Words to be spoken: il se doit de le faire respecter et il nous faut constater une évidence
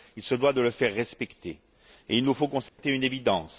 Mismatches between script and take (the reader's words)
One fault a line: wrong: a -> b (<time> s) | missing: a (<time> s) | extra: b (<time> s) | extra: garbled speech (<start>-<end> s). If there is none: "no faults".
no faults